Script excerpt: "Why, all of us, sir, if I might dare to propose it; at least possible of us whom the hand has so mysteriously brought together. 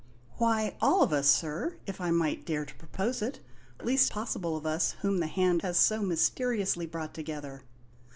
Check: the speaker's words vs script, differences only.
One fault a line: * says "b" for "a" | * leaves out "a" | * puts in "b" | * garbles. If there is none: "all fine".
all fine